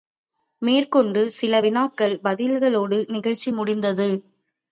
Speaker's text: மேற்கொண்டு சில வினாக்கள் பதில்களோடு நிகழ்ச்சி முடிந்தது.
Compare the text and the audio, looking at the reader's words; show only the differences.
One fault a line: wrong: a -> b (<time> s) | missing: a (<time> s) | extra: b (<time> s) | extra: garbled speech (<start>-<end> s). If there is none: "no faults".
no faults